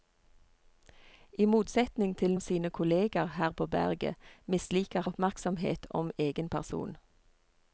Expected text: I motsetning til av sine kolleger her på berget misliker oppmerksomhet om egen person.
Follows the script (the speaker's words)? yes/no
yes